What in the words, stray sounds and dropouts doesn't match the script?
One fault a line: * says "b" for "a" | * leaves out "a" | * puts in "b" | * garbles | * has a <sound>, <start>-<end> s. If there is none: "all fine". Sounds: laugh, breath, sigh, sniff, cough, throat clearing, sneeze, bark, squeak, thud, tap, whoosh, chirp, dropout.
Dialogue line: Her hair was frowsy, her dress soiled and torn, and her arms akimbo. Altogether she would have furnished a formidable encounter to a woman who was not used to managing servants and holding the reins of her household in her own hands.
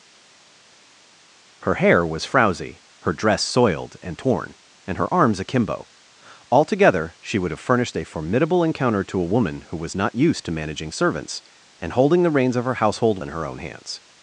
all fine